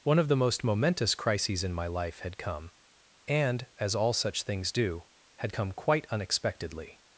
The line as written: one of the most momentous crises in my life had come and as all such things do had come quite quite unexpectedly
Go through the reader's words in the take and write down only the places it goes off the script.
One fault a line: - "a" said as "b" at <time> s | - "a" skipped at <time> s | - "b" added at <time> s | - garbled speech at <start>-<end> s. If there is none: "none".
- "quite" skipped at 6.1 s